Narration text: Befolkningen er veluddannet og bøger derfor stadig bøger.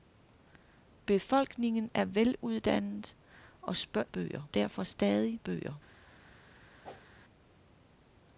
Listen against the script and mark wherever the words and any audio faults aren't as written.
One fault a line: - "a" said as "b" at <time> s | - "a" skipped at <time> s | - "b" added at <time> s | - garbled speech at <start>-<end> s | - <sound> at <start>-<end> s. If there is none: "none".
- whoosh at 6.8-7.1 s